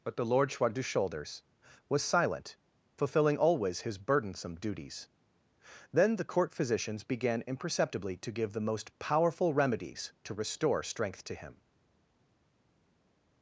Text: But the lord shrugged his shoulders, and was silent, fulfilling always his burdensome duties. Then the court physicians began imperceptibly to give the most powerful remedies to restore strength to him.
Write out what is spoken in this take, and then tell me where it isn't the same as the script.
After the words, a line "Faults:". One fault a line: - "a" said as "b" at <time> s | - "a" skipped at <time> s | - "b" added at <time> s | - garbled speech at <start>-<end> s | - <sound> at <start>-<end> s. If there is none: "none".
But the lord shrugged his shoulders, was silent, fulfilling always his burdensome duties. Then the court physicians began imperceptibly to give the most powerful remedies to restore strength to him.
Faults:
- "and" skipped at 1.4 s